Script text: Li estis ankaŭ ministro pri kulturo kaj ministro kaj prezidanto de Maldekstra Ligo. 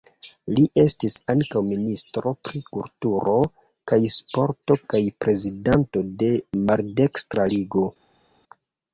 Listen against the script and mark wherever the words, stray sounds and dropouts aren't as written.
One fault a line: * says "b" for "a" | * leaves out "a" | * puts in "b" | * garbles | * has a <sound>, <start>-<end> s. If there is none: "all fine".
* says "sporto" for "ministro"